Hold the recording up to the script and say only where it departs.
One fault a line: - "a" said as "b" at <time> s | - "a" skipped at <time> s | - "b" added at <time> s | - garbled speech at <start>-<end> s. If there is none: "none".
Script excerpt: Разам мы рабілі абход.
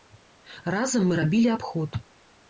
none